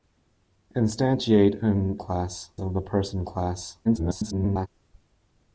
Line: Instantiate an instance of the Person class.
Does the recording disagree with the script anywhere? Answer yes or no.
yes